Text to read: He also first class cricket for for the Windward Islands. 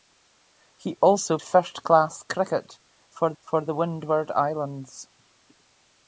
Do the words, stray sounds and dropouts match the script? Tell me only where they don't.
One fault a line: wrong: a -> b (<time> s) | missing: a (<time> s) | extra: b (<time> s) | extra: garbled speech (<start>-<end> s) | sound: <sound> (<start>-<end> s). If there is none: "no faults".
no faults